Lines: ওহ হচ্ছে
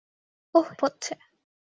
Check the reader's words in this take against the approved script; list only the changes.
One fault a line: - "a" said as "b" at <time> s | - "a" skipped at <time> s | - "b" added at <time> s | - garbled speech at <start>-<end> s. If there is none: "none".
none